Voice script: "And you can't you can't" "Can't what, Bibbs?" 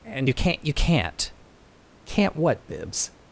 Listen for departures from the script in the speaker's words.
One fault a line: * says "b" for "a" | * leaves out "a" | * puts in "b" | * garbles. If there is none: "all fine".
all fine